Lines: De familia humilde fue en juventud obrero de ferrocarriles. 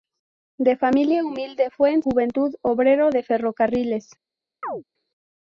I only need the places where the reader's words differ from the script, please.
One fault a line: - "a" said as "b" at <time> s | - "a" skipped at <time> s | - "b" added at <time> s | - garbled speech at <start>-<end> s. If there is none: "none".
none